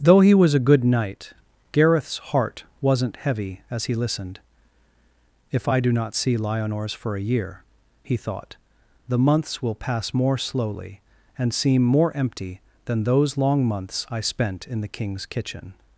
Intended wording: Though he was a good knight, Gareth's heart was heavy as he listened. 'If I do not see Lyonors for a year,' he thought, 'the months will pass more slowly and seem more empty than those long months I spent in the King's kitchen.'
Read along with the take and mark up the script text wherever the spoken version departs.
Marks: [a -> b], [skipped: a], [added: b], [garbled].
Though he was a good knight, Gareth's heart [was -> wasn't] heavy as he listened. 'If I do not see Lyonors for a year,' he thought, 'the months will pass more slowly and seem more empty than those long months I spent in the King's kitchen.'